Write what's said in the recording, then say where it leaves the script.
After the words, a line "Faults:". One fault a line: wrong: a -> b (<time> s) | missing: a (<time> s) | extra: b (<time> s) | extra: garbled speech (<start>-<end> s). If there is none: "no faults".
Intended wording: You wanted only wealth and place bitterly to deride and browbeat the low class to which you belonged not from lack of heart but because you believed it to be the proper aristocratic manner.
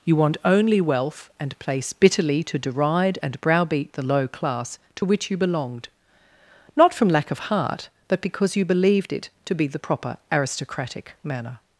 You want only wealth and place bitterly to deride and browbeat the low class to which you belonged not from lack of heart but because you believed it to be the proper aristocratic manner.
Faults:
wrong: wanted -> want (0.1 s)